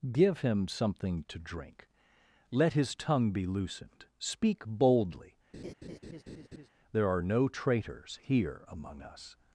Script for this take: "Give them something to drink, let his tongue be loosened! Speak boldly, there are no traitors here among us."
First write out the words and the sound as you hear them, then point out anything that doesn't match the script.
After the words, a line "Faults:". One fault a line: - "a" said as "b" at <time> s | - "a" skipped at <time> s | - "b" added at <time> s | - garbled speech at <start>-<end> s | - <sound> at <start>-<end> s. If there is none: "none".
"Give him something to drink, let his tongue be loosened! Speak boldly, there are no traitors here among us."
Faults:
- "them" said as "him" at 0.4 s
- laugh at 5.5-6.7 s